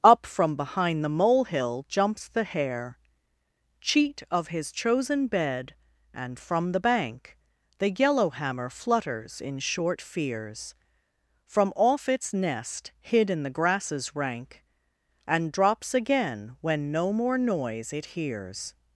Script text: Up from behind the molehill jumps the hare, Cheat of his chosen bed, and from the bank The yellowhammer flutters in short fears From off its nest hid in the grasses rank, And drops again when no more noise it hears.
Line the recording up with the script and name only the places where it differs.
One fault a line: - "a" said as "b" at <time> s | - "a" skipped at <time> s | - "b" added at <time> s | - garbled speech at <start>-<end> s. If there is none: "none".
none